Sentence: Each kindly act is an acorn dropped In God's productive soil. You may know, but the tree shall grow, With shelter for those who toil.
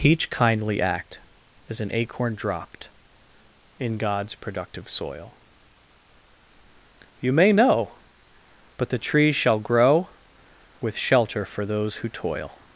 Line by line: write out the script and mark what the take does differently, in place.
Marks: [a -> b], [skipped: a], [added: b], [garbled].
Each kindly act is an acorn dropped In God's productive soil. You may know, but the tree shall grow, With shelter for those who toil.